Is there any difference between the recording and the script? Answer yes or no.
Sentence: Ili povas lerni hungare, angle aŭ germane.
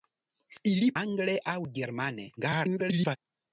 yes